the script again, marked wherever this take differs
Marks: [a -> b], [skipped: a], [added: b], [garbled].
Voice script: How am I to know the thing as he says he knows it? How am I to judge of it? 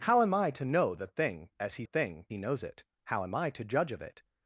How am I to know the thing as he [says -> thing] he knows it? How am I to judge of it?